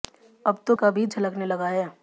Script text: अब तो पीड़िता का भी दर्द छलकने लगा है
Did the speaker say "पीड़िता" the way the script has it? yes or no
no